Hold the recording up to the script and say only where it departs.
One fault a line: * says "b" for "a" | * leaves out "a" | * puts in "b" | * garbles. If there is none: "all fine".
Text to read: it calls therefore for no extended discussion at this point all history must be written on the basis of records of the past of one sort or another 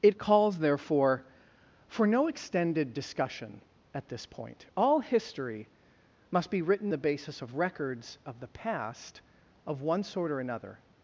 * leaves out "on"